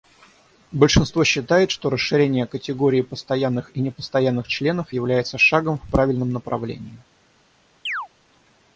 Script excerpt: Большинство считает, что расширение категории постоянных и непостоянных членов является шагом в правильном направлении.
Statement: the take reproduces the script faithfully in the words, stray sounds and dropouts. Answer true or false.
false